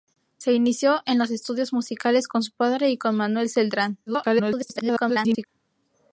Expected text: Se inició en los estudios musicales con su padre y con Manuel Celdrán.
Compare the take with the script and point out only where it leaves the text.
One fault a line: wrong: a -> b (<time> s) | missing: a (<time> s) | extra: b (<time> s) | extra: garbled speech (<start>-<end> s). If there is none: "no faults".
extra: garbled speech (4.1-5.5 s)